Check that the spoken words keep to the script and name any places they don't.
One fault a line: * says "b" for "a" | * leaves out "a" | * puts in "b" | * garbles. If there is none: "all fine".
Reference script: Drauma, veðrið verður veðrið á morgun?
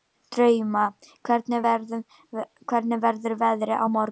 * says "hvernig" for "veðrið"